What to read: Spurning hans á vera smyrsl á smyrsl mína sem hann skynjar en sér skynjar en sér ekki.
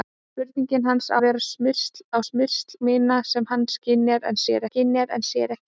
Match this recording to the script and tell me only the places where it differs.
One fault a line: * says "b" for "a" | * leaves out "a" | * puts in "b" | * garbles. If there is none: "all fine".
all fine